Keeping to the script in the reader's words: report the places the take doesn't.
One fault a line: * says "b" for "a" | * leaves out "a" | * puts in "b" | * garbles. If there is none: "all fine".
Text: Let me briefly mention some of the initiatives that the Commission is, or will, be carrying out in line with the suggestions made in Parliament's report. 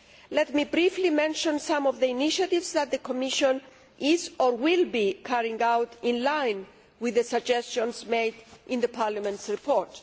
all fine